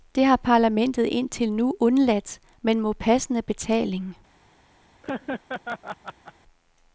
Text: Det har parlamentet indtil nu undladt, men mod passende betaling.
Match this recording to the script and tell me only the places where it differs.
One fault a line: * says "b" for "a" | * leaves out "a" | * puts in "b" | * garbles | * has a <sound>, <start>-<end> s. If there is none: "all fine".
* has a laugh, 5.0-6.3 s